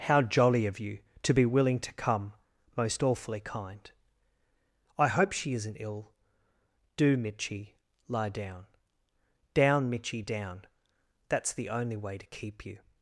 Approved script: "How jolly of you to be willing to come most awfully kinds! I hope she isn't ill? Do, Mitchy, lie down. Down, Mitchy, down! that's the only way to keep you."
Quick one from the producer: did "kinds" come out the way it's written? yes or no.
no